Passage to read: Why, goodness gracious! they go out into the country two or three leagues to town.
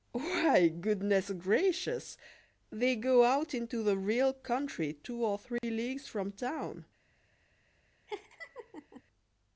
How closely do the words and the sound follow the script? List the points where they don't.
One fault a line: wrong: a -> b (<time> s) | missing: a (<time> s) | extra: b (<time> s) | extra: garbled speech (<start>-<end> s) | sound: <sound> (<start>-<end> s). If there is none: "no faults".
extra: real (4.0 s)
sound: dropout (5.6-5.6 s)
wrong: to -> from (6.1 s)
sound: laugh (8.1-9.0 s)